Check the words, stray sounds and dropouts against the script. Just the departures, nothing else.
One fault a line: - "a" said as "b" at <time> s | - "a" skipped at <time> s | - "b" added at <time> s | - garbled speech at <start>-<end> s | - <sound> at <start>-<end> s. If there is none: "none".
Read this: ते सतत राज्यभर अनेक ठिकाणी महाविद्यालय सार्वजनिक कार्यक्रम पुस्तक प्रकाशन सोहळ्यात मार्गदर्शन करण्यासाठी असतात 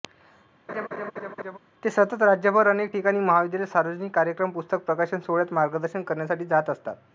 - laugh at 0.7-1.6 s
- "जात" added at 6.5 s